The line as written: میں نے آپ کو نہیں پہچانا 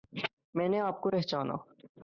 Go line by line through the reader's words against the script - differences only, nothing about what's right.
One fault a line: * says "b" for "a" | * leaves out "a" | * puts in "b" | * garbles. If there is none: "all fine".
* leaves out "نہیں"